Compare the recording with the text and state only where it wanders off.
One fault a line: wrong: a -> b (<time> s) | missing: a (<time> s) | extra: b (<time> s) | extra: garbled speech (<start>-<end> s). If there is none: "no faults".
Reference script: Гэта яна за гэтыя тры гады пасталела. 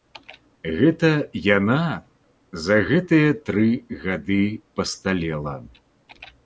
no faults